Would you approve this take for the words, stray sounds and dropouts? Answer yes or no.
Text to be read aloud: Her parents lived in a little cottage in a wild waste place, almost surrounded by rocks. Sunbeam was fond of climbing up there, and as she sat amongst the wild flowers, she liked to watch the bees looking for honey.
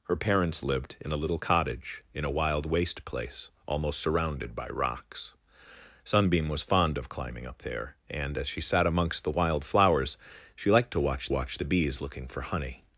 no